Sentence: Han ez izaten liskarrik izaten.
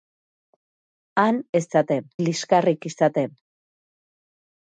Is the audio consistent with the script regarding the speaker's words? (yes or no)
yes